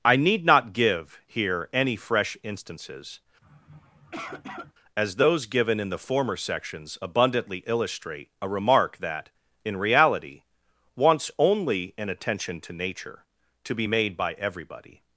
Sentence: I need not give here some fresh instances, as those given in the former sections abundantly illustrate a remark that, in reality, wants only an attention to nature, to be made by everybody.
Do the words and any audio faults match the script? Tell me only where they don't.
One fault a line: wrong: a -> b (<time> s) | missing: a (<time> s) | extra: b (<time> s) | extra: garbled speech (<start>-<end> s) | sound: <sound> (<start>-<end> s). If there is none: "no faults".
wrong: some -> any (1.7 s)
sound: sniff (3.4-4.7 s)